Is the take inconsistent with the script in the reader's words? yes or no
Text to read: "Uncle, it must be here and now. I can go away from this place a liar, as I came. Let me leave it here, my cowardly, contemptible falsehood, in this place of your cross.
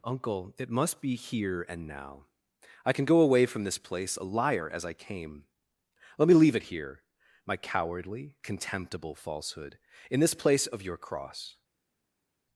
no